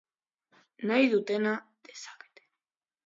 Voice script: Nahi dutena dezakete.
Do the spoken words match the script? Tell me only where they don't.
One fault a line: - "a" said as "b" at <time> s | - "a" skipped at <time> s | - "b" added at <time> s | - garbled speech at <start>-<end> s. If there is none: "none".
none